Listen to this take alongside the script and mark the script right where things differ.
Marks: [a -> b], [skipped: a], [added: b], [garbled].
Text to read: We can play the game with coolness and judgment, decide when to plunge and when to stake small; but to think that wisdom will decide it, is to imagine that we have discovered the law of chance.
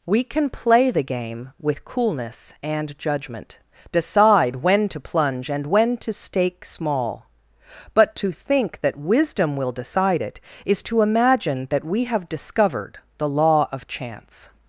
We can play the game with coolness and judgment, decide when to plunge and when to stake small; but to think that wisdom will decide it, is to imagine that we have discovered the law of chance.